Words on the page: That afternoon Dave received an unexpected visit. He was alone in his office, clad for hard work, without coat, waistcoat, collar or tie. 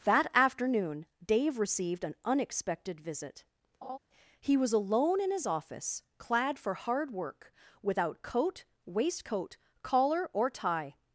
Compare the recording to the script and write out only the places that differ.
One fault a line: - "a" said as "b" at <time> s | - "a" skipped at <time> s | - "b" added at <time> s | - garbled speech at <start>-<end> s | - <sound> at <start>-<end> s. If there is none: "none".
- laugh at 3.8-4.0 s